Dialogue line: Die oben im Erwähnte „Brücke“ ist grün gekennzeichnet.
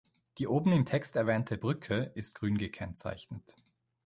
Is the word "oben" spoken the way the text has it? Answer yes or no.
yes